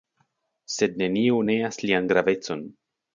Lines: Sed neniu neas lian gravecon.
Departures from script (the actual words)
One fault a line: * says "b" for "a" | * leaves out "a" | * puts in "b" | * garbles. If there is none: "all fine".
all fine